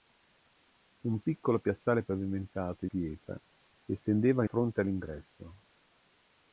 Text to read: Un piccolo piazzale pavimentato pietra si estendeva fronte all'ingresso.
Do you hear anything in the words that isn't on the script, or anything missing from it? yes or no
no